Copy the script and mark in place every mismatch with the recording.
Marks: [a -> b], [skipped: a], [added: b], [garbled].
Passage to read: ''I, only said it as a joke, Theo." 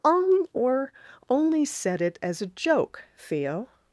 [''I, -> on or] only said it as a joke, Theo."